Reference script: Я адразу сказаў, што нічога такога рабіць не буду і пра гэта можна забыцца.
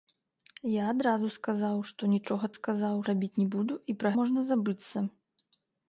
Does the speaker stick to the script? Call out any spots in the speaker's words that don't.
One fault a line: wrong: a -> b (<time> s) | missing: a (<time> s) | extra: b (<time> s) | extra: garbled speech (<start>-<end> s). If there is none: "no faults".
wrong: такога -> сказаў (2.5 s)
missing: гэта (4.1 s)